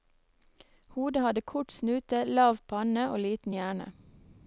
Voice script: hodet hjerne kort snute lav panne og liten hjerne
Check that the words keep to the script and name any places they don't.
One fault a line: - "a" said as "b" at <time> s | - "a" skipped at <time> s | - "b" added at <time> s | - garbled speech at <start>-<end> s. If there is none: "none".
- "hjerne" said as "hadde" at 1.2 s